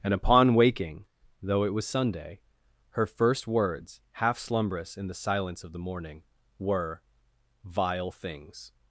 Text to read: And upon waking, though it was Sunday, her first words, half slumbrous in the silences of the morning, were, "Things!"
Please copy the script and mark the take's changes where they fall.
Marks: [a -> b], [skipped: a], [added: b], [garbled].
And upon waking, though it was Sunday, her first words, half slumbrous in the [silences -> silence] of the morning, were, [added: Vile] "Things!"